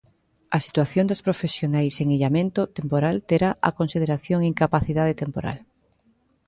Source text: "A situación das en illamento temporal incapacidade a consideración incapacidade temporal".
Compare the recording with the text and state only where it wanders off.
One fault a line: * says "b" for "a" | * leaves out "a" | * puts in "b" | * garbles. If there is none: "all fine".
* puts in "profesionais"
* says "terá" for "incapacidade"